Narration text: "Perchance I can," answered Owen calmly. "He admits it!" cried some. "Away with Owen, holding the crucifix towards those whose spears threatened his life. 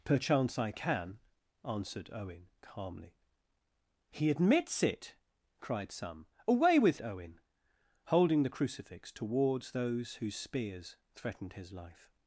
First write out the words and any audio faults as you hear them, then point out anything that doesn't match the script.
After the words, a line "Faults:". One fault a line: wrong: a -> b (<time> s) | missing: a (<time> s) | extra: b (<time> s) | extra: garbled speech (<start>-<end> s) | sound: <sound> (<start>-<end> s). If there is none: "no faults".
"Perchance I can," answered Owen calmly. "He admits it!" cried some. "Away with Owen, holding the crucifix towards those whose spears threatened his life.
Faults:
no faults